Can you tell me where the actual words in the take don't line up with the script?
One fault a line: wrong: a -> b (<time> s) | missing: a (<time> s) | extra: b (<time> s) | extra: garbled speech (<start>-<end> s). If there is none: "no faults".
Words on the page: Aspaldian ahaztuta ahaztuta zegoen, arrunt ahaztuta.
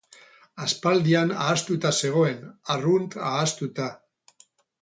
missing: ahaztuta (1.9 s)